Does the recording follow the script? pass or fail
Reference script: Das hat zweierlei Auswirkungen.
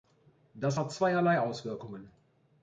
pass